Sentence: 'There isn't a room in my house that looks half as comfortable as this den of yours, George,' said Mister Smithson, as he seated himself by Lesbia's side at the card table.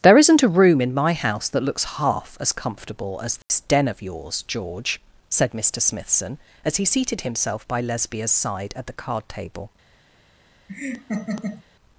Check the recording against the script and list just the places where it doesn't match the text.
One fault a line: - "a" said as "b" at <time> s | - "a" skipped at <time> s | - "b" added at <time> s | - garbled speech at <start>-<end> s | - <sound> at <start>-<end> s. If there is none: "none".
- dropout at 3.4-3.5 s
- laugh at 10.7-11.6 s